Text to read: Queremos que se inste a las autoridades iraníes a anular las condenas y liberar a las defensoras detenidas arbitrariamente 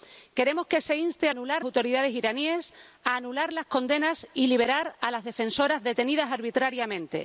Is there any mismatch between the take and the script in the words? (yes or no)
yes